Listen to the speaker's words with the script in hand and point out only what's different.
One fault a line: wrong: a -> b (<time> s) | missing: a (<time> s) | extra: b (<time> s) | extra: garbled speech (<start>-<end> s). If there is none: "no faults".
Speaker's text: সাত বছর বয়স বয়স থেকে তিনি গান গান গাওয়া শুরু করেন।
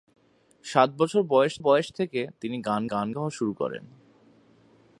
no faults